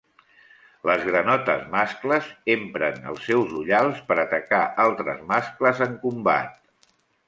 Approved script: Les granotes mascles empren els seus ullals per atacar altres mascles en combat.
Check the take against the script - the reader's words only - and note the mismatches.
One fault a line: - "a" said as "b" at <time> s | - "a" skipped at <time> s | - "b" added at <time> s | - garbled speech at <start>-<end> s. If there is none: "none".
none